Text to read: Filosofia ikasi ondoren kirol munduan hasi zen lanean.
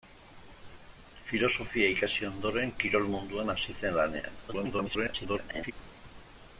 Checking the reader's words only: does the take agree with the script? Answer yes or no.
no